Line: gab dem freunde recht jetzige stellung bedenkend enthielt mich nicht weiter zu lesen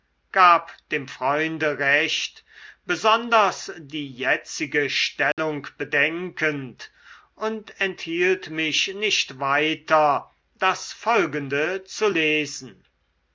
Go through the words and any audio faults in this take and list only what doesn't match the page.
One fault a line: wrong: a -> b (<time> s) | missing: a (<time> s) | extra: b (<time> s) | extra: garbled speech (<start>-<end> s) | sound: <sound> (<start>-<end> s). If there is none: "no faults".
extra: besonders die (2.9 s)
sound: dropout (5.3-5.4 s)
extra: und (7.3 s)
extra: das folgende (10.6 s)